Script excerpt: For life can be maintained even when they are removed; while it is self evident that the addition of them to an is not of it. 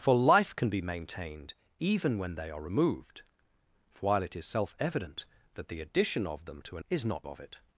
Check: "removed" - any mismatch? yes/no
no